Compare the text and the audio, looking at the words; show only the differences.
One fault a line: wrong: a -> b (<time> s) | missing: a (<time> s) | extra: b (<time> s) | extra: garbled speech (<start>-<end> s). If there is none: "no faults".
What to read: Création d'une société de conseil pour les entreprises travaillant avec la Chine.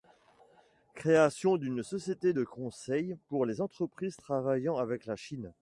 no faults